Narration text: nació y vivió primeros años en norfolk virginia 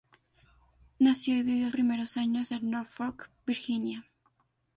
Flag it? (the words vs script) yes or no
no